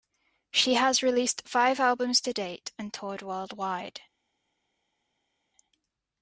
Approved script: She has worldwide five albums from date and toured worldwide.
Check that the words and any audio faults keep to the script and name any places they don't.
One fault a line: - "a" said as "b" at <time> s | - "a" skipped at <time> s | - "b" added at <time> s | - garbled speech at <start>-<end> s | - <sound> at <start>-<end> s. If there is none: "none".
- "worldwide" said as "released" at 1.0 s
- "from" said as "to" at 2.2 s